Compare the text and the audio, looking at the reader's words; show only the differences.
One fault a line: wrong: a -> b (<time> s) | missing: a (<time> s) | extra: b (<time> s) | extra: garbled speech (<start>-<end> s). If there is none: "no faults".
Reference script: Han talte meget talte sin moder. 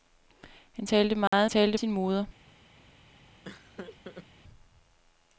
no faults